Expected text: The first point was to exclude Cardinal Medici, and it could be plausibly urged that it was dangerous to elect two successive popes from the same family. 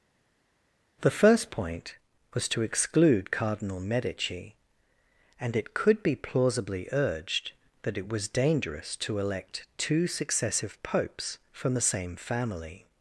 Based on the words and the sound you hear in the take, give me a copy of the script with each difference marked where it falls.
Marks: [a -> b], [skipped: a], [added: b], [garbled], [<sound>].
The first point was to exclude Cardinal Medici, and it could be plausibly urged that it was dangerous to elect two successive popes from the same family.